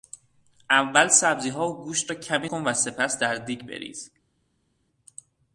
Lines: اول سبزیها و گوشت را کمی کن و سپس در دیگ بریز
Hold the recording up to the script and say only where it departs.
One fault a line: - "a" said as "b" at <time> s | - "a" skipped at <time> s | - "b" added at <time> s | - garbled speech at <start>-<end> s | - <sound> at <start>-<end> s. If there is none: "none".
none